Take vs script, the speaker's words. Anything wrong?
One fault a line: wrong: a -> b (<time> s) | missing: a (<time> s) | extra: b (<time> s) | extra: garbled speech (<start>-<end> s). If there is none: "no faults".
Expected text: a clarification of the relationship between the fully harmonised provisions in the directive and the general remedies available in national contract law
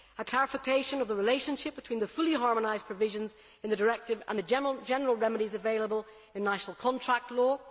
no faults